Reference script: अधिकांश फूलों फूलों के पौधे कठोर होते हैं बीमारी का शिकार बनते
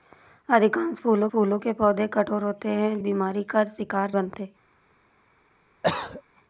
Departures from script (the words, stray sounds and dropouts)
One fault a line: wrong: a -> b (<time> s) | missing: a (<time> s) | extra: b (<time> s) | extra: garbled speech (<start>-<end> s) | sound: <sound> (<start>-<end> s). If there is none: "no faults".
sound: cough (5.8-6.2 s)